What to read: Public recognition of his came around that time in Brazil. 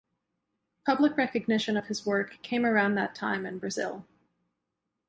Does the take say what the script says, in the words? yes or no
no